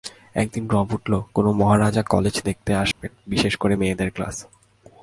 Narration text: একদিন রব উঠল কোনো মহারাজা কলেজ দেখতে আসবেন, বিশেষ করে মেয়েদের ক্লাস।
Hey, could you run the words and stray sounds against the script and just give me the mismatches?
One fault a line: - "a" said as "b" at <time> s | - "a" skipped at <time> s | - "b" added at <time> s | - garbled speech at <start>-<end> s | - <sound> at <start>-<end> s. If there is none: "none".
- dropout at 2.9-3.0 s